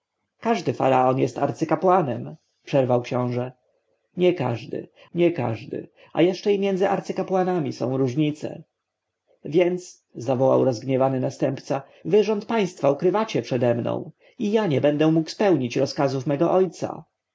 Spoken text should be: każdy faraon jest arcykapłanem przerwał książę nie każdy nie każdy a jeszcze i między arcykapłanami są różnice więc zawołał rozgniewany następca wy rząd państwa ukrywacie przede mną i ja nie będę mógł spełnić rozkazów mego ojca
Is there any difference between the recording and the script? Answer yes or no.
no